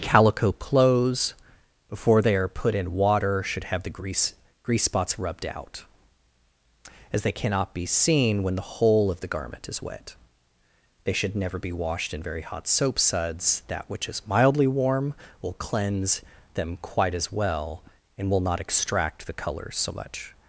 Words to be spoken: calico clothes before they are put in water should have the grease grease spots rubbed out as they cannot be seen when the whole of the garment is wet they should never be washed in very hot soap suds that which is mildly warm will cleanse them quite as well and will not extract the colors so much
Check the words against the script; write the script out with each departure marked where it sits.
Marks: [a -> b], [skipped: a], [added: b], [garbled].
calico clothes before they are put in water should have the grease grease spots rubbed out as they cannot be seen when the whole of the garment is wet they should never be washed in very hot soap suds that which is mildly warm will cleanse them quite as well and will not extract the colors so much